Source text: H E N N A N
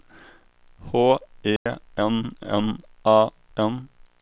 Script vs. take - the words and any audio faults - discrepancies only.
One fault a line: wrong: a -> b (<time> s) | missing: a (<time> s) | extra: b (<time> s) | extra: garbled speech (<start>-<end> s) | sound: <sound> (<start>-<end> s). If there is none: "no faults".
sound: dropout (1.6-1.7 s)